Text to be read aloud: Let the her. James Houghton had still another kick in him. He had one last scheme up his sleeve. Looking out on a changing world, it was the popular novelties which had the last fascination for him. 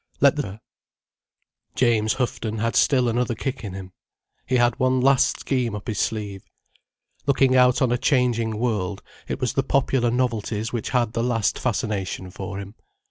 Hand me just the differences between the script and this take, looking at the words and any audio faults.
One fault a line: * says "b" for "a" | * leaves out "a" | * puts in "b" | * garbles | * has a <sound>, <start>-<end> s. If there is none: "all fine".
all fine